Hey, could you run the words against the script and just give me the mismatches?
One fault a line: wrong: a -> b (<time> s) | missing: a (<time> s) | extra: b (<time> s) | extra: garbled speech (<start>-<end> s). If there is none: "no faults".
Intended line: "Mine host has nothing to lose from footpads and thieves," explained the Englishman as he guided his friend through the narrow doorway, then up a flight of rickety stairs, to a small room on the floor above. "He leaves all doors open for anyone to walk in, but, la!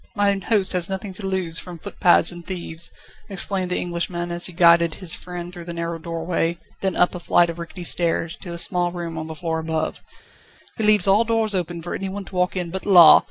no faults